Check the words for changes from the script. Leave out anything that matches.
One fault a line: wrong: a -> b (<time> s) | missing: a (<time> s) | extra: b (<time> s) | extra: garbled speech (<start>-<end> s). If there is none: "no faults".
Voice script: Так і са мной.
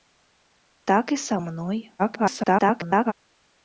extra: garbled speech (2.0-3.1 s)